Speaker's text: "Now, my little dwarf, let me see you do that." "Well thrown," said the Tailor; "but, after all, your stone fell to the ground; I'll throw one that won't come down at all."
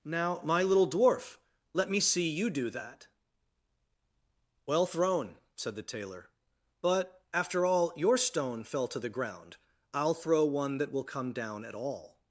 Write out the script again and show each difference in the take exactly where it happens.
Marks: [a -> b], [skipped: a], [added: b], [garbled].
"Now, my little dwarf, let me see you do that." "Well thrown," said the Tailor; "but, after all, your stone fell to the ground; I'll throw one that [won't -> will] come down at all."